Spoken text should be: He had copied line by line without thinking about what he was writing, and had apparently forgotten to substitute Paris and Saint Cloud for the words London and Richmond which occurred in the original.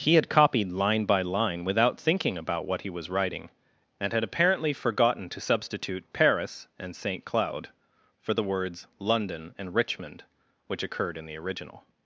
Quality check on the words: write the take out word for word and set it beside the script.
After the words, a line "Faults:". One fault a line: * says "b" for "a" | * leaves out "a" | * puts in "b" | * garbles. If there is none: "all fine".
He had copied line by line without thinking about what he was writing, and had apparently forgotten to substitute Paris and Saint Cloud for the words London and Richmond which occurred in the original.
Faults:
all fine